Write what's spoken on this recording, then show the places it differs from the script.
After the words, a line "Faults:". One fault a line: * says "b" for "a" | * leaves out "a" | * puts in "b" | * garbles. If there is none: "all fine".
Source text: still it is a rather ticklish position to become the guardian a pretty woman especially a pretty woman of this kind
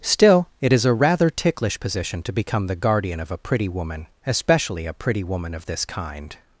still it is a rather ticklish position to become the guardian of a pretty woman especially a pretty woman of this kind
Faults:
* puts in "of"